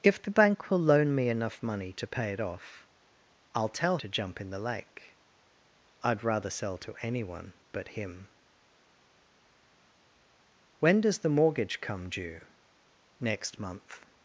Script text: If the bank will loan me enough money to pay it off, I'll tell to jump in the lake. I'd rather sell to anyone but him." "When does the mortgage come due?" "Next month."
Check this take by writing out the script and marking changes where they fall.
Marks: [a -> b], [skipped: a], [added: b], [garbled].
If the bank will loan me enough money to pay it off, I'll tell to jump in the lake. I'd rather sell to anyone but him." "When does the mortgage come due?" "Next month."